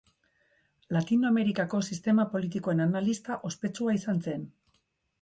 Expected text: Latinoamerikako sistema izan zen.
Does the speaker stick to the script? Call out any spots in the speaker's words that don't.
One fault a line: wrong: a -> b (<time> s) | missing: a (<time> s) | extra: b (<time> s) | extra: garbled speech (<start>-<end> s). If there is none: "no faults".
extra: politikoen analista ospetsua (2.3 s)